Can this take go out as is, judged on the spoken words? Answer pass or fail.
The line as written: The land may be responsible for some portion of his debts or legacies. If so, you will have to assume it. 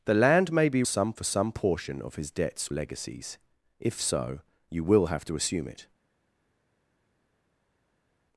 fail